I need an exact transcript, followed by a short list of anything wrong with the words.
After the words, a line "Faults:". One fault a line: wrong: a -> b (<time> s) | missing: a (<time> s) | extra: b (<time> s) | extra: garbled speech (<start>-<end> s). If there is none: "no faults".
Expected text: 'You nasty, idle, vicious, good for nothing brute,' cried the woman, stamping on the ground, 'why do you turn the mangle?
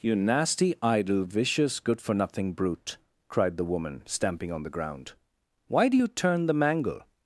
'You nasty, idle, vicious, good for nothing brute,' cried the woman, stamping on the ground, 'why do you turn the mangle?
Faults:
no faults